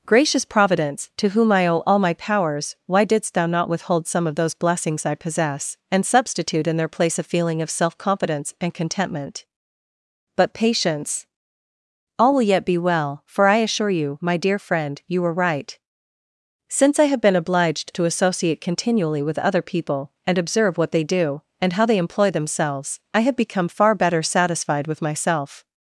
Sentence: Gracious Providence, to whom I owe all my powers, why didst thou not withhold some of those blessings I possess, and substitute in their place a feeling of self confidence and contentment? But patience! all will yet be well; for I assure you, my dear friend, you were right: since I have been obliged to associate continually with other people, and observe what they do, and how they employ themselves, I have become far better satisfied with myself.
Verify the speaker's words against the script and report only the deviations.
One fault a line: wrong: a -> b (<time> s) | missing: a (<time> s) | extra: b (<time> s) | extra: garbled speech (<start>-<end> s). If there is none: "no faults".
no faults